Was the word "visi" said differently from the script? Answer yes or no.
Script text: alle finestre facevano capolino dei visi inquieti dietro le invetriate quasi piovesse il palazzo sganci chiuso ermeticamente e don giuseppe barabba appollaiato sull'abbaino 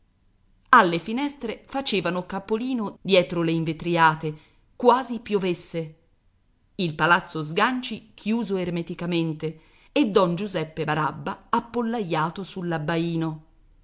yes